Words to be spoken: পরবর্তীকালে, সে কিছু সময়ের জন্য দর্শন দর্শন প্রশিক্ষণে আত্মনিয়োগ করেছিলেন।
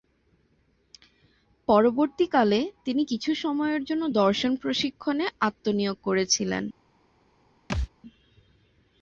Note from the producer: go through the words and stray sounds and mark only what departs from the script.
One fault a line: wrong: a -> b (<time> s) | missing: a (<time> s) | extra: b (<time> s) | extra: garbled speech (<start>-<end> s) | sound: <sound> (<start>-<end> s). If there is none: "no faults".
wrong: সে -> তিনি (2.9 s)
missing: দর্শন (4.5 s)
sound: thud (7.7-7.9 s)